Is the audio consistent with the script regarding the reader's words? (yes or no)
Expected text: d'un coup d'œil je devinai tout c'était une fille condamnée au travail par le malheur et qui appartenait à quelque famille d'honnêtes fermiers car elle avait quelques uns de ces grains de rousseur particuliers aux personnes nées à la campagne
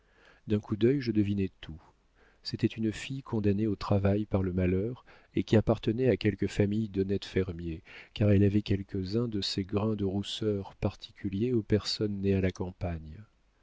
yes